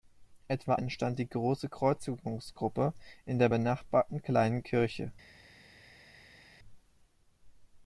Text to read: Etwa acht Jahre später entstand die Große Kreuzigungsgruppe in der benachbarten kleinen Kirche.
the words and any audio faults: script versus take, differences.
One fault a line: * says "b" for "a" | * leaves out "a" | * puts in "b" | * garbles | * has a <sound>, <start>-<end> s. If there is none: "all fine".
* leaves out "acht Jahre später"